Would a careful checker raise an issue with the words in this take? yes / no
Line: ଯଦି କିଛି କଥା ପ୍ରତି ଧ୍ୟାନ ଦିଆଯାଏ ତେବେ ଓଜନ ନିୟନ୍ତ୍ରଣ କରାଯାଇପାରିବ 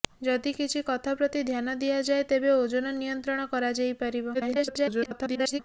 yes